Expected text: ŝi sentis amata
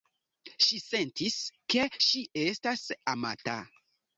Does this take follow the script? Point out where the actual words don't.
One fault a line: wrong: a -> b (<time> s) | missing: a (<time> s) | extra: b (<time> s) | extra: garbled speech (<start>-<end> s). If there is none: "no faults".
extra: ke ŝi estas (1.8 s)